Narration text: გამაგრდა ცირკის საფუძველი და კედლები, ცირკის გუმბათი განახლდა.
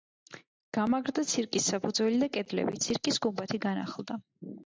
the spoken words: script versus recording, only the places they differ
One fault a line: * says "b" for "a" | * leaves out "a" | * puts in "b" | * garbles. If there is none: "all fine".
all fine